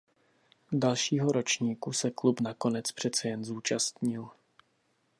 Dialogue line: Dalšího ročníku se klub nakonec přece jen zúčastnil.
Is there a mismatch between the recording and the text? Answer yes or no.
no